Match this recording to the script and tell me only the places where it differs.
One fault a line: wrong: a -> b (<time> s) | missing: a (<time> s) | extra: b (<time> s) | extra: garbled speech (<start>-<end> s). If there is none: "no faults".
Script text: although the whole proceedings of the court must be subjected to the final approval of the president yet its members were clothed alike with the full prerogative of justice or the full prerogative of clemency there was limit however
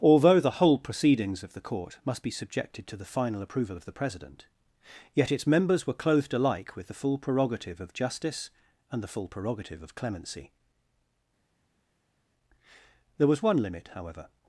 wrong: or -> and (8.9 s)
extra: one (13.4 s)